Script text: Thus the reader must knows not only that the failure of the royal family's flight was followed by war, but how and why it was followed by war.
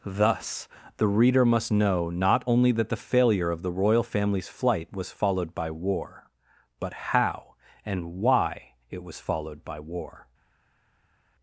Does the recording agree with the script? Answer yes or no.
no